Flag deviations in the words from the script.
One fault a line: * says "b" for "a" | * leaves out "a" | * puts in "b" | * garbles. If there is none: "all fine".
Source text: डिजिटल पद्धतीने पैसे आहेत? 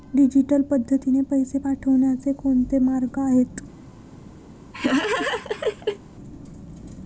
* puts in "पाठवण्याचे कोणते मार्ग"